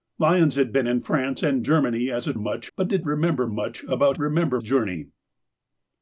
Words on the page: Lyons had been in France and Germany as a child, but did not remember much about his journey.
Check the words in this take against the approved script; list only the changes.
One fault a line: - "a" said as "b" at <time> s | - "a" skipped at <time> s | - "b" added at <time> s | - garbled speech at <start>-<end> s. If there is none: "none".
- "child" said as "much" at 2.3 s
- "not" skipped at 3.0 s
- "his" said as "remember" at 4.2 s